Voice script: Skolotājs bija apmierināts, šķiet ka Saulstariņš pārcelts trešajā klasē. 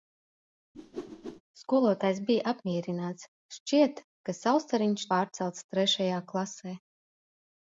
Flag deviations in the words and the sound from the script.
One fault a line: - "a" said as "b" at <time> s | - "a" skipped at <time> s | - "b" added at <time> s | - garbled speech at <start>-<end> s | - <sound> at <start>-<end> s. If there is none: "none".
- whoosh at 0.7-1.4 s